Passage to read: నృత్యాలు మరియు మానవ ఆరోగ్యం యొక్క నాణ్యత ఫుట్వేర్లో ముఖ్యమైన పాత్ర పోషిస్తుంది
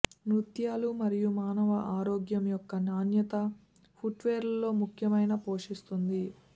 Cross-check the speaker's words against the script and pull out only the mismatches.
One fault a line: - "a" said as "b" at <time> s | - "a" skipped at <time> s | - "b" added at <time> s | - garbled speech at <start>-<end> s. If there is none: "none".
- "పాత్ర" skipped at 5.3 s